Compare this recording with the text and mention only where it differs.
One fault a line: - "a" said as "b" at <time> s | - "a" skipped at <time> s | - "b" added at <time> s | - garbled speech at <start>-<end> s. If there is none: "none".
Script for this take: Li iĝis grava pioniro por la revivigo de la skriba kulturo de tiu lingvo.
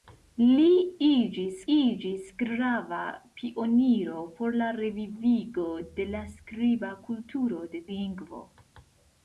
- "iĝis" added at 1.7 s
- "tiu" skipped at 7.8 s